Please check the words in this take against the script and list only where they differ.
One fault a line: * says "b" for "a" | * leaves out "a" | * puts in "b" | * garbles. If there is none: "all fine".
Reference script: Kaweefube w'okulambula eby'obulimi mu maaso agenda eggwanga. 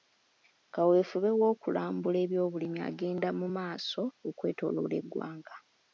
* puts in "agenda"
* says "okwetooloola" for "agenda"